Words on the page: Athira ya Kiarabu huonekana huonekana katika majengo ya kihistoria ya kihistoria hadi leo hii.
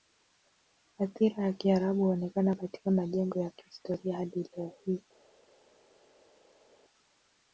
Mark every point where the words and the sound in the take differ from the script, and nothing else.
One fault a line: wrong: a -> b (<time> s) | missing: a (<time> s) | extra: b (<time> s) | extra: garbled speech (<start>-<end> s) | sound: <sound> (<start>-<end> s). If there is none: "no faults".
missing: huonekana (2.5 s)
missing: ya kihistoria (4.2 s)